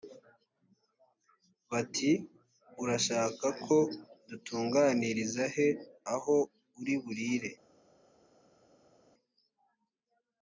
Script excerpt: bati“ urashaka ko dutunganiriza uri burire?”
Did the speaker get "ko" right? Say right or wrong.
right